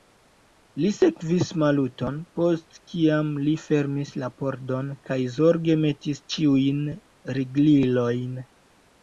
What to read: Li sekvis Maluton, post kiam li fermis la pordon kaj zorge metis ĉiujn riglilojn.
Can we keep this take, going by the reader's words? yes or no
yes